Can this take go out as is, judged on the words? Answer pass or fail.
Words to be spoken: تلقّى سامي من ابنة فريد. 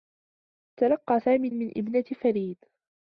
pass